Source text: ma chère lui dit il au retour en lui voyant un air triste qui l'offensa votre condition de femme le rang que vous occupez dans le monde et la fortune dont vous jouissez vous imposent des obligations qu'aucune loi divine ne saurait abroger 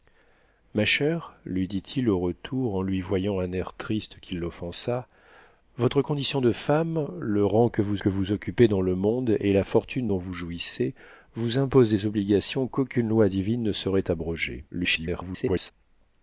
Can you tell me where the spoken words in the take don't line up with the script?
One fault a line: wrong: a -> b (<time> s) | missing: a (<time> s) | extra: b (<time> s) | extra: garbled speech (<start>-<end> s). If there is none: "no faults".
extra: que vous (8.0 s)
extra: garbled speech (14.7-15.7 s)